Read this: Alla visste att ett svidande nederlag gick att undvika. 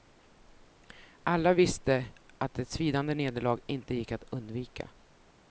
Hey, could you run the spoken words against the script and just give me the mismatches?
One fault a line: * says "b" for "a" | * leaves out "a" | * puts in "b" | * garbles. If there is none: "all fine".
* puts in "inte"